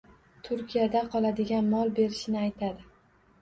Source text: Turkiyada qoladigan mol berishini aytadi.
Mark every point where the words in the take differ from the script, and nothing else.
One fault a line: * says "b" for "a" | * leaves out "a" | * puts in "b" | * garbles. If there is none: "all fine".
all fine